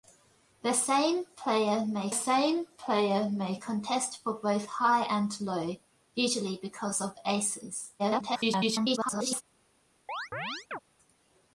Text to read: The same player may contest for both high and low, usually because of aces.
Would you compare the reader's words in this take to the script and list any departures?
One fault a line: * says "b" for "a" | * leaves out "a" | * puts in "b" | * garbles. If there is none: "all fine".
* puts in "same player may"
* garbles